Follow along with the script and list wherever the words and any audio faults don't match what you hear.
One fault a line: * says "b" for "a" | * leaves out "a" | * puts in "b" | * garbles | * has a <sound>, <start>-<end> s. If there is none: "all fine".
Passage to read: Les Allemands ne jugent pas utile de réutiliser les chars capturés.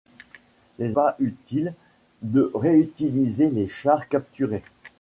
* leaves out "Allemands ne jugent"